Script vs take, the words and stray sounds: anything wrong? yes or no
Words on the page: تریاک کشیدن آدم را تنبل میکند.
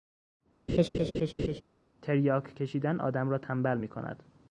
yes